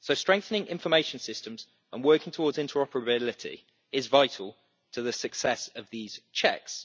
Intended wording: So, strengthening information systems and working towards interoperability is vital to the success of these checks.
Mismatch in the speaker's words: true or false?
false